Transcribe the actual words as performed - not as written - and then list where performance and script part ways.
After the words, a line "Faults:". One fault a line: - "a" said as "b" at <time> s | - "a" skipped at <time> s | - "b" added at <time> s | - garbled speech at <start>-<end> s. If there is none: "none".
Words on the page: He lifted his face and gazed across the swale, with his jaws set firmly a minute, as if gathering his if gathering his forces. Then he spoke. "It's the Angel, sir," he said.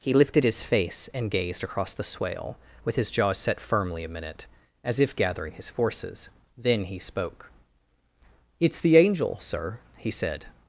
He lifted his face and gazed across the swale, with his jaws set firmly a minute, as if gathering his forces. Then he spoke. "It's the Angel, sir," he said.
Faults:
- "if gathering his" skipped at 5.7 s